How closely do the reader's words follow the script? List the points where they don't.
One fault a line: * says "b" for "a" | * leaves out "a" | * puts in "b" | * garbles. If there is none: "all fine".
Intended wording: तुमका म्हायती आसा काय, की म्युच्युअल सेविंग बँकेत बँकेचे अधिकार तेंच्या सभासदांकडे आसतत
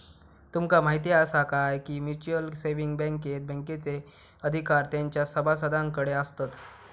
all fine